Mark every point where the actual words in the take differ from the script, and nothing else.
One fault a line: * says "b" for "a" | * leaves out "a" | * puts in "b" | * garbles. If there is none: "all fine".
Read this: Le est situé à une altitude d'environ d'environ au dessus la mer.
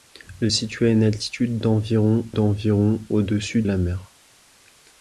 all fine